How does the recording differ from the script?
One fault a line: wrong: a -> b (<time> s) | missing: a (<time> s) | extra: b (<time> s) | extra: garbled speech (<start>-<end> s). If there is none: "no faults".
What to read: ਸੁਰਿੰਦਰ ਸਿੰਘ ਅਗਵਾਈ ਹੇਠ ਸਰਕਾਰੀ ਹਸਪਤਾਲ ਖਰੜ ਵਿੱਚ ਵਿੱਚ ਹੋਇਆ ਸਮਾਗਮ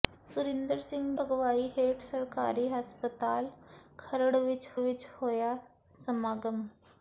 no faults